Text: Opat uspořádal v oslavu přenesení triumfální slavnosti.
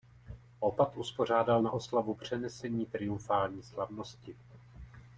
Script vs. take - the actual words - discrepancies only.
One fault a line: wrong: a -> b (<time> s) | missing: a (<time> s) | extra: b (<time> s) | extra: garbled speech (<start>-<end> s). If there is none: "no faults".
wrong: v -> na (1.6 s)